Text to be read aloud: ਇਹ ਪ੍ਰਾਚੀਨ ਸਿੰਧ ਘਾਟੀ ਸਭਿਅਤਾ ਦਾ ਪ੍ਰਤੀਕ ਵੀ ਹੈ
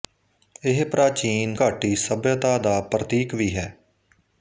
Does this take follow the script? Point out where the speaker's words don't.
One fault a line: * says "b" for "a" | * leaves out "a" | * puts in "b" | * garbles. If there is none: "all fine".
* leaves out "ਸਿੰਧ"